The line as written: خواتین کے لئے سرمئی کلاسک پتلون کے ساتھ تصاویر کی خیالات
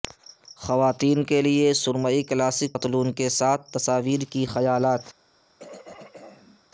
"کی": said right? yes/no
yes